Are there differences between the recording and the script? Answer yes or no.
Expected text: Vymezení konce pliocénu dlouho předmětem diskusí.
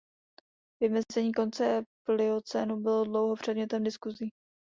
yes